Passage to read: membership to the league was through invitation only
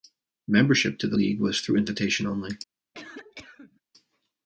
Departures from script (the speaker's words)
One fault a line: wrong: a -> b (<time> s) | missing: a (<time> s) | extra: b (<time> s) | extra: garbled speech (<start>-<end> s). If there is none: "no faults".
no faults